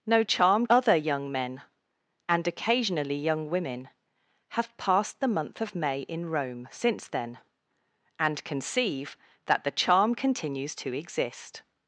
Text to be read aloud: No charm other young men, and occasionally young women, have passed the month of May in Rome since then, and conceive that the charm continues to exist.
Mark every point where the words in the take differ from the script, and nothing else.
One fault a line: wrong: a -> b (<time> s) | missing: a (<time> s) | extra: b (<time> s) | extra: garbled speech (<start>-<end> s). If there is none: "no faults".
no faults